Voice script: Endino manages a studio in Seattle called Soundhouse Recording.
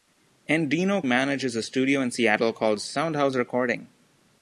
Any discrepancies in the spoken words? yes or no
no